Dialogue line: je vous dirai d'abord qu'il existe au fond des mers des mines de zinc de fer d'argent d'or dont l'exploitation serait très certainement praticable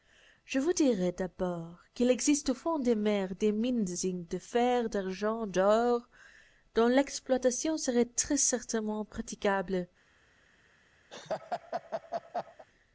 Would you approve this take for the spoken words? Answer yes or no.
yes